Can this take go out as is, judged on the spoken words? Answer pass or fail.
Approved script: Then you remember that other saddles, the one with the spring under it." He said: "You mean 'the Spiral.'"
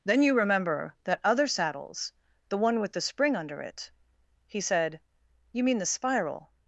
pass